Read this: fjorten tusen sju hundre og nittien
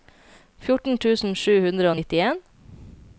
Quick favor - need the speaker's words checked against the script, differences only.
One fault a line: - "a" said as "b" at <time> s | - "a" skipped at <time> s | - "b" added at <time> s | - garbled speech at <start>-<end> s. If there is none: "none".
none